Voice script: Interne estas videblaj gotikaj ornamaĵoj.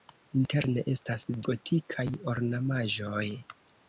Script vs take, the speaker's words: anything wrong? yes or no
yes